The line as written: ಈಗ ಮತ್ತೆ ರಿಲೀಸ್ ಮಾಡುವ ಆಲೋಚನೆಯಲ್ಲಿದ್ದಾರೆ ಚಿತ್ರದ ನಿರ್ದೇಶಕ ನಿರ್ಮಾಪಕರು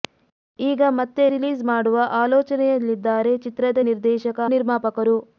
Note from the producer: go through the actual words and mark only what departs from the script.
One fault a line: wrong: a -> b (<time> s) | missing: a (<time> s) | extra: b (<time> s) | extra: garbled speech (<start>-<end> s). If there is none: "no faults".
no faults